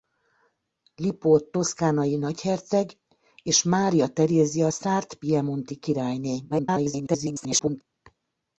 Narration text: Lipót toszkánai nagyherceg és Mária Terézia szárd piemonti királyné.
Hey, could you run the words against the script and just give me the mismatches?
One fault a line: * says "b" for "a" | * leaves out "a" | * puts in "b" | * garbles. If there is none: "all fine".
* garbles